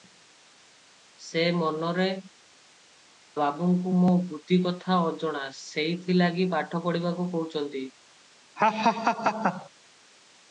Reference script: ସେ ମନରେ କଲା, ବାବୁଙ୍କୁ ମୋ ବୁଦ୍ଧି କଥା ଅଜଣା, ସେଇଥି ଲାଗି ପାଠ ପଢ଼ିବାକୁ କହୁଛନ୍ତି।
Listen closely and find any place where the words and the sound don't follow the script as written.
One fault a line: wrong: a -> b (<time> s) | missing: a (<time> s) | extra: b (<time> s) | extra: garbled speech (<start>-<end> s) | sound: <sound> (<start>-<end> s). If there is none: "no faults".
missing: କଲା (2.1 s)
sound: laugh (8.6-9.7 s)